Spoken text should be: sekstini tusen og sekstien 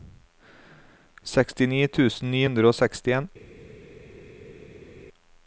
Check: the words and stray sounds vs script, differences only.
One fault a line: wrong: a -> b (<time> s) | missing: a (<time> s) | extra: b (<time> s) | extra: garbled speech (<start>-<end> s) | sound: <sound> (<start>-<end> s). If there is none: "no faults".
extra: ni hundre (2.3 s)